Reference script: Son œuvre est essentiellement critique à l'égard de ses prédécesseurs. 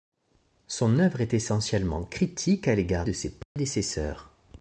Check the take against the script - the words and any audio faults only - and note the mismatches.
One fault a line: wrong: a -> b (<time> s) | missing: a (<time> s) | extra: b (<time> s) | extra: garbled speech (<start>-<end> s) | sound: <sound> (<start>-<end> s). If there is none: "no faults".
sound: dropout (3.4-3.6 s)